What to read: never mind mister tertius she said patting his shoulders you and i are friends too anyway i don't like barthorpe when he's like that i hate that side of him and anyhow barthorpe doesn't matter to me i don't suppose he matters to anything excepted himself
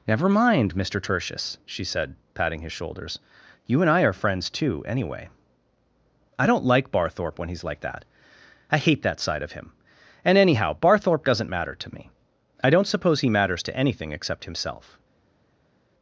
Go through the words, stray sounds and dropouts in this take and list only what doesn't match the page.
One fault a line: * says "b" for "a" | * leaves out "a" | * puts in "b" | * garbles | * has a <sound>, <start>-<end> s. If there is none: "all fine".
* says "except" for "excepted"